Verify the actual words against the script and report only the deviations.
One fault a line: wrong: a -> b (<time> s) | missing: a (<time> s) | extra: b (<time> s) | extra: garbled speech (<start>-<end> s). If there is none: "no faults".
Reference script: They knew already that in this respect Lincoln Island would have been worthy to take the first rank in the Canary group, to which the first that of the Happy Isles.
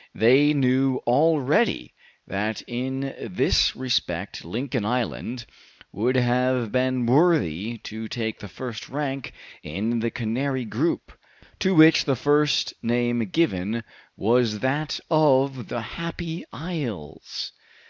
extra: name given was (12.8 s)